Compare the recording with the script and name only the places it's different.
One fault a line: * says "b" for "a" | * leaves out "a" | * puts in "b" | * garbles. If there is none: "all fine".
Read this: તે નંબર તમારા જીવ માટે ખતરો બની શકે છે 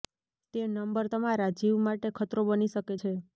all fine